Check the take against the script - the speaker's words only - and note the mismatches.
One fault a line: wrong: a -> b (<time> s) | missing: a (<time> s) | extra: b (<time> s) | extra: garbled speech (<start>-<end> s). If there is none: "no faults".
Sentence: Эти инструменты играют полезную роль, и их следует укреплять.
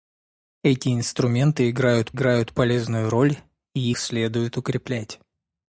extra: играют (2.1 s)
missing: их (3.9 s)